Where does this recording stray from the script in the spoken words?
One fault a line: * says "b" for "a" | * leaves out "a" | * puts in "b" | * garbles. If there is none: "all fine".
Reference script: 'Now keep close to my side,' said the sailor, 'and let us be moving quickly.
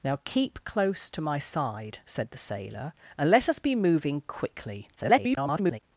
* garbles